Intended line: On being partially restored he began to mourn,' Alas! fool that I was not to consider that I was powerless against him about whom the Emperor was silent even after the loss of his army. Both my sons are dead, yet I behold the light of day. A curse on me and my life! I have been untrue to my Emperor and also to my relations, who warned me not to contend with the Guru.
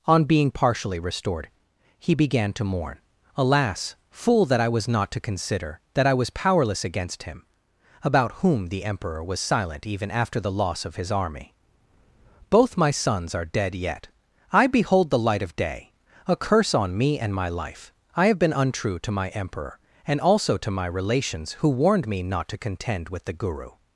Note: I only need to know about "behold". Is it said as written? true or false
true